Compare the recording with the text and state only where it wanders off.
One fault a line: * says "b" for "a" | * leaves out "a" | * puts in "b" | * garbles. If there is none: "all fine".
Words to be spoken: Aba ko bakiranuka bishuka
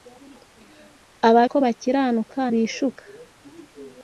all fine